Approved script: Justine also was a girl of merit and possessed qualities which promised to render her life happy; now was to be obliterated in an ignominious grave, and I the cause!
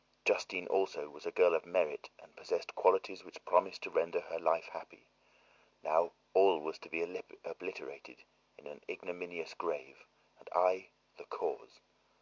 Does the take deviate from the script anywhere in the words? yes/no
yes